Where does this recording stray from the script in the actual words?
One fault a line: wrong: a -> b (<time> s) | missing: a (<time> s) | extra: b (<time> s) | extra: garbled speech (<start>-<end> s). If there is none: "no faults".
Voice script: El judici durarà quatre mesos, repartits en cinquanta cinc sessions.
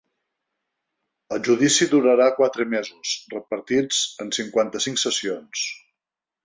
no faults